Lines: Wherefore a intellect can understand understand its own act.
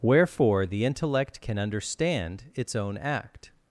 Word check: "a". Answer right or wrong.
wrong